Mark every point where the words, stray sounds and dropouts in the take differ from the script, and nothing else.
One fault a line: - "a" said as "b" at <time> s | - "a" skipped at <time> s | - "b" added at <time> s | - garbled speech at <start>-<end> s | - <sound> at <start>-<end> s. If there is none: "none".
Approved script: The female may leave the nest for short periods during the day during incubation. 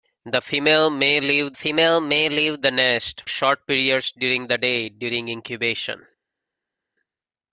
- "female may leave" added at 1.5 s
- "for" skipped at 3.2 s